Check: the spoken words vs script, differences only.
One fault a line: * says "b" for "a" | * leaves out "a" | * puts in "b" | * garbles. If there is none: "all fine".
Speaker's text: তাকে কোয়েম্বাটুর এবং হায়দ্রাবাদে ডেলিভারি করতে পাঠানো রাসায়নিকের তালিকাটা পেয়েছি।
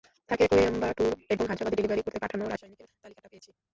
all fine